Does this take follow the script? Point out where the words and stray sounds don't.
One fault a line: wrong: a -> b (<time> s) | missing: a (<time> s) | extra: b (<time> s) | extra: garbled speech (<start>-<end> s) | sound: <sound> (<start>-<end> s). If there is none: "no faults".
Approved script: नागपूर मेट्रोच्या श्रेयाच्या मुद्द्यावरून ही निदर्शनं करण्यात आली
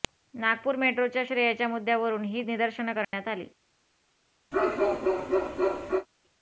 sound: dropout (3.0-3.1 s)
sound: bark (4.5-6.1 s)